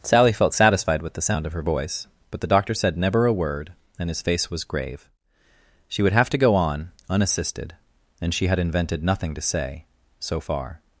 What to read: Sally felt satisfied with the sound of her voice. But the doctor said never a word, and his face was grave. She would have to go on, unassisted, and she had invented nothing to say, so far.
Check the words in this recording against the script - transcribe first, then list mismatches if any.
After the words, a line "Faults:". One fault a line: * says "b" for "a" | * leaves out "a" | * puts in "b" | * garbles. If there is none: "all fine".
Sally felt satisfied with the sound of her voice. But the doctor said never a word, and his face was grave. She would have to go on, unassisted, and she had invented nothing to say, so far.
Faults:
all fine